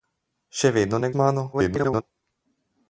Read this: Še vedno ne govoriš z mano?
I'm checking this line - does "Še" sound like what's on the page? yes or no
yes